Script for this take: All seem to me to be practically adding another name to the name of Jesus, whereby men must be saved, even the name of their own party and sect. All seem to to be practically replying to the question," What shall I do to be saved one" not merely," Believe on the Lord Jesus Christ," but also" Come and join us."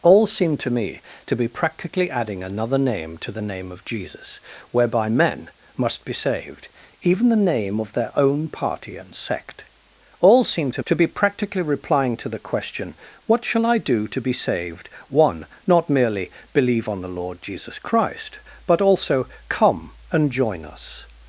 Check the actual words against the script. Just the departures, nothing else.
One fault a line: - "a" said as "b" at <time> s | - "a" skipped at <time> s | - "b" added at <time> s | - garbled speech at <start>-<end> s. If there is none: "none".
none